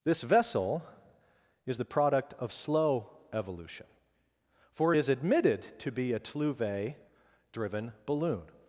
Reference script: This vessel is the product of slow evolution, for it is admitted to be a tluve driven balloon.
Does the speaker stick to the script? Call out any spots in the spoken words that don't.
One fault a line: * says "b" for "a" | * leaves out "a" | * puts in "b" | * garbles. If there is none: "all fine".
all fine